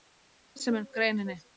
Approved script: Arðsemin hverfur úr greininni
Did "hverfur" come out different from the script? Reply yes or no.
yes